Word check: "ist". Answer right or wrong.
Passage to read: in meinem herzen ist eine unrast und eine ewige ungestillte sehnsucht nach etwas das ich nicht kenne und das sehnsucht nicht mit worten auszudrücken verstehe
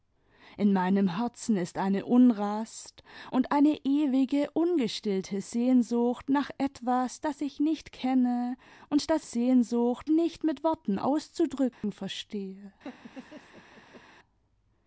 right